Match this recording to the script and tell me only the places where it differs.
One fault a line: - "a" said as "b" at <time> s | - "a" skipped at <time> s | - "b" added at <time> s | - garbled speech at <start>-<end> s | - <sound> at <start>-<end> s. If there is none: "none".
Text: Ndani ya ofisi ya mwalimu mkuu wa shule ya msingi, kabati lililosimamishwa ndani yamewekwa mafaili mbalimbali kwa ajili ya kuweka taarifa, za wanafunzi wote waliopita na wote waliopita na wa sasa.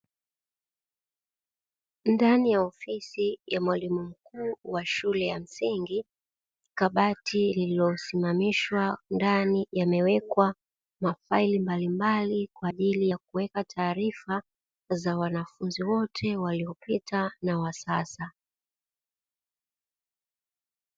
- "wote waliopita na" skipped at 17.6 s